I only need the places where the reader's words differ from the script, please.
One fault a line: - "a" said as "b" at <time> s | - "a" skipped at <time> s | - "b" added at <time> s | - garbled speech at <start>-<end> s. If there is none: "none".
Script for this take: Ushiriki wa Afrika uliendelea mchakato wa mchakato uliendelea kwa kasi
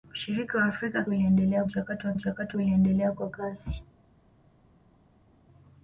none